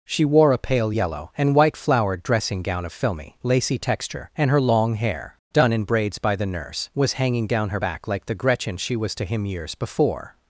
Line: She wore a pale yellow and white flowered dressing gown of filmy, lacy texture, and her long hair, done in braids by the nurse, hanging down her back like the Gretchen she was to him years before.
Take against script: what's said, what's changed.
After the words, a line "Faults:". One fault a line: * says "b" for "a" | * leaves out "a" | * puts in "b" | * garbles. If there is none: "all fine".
She wore a pale yellow and white flowered dressing gown of filmy, lacy texture, and her long hair, done in braids by the nurse, was hanging down her back like the Gretchen she was to him years before.
Faults:
* puts in "was"